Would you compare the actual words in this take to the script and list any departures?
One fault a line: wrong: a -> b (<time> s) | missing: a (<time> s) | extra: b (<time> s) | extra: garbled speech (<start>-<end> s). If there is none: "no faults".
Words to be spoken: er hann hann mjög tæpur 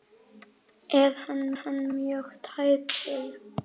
no faults